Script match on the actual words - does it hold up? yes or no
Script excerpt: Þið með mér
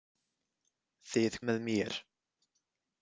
yes